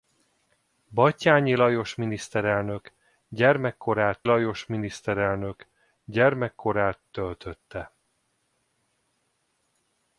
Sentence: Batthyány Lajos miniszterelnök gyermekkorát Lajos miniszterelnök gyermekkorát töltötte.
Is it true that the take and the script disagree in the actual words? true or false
false